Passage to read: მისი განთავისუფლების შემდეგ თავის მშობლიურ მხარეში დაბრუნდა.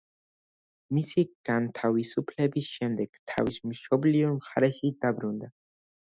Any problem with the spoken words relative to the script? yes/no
no